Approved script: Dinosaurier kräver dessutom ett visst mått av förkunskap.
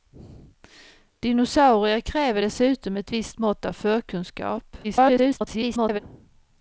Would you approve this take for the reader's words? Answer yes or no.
no